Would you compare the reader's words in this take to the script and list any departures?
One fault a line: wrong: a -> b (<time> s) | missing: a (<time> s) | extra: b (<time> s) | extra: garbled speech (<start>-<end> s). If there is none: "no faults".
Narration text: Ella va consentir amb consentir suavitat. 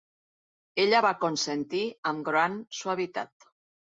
wrong: consentir -> gran (2.3 s)